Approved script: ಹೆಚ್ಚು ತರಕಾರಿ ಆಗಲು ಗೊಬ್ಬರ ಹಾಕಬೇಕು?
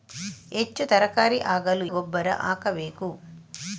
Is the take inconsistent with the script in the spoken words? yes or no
no